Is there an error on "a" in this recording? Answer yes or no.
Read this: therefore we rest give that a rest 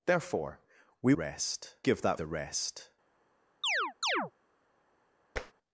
no